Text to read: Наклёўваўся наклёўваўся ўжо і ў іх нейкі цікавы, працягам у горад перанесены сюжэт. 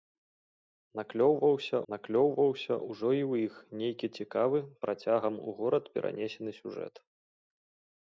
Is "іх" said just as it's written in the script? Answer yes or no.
yes